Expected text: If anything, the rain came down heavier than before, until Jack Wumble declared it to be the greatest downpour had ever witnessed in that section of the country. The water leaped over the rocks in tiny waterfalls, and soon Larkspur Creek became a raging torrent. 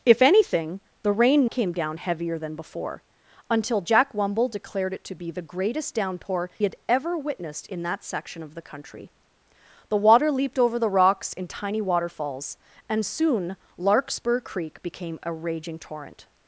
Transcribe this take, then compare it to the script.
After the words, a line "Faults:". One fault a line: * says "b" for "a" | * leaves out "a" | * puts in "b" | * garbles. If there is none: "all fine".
If anything, the rain came down heavier than before, until Jack Wumble declared it to be the greatest downpour had ever witnessed in that section of the country. The water leaped over the rocks in tiny waterfalls, and soon Larkspur Creek became a raging torrent.
Faults:
all fine